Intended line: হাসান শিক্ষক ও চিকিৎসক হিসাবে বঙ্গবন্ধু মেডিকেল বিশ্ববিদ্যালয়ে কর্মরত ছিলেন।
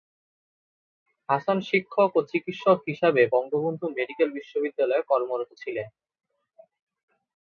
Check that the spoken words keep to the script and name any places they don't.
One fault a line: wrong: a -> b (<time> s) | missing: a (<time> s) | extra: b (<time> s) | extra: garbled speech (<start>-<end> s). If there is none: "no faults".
no faults